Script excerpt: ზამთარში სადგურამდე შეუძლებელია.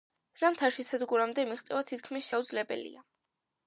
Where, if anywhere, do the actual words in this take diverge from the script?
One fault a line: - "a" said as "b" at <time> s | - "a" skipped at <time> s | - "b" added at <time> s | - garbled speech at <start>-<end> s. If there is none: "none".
- "მიღწევა თითქმის" added at 1.5 s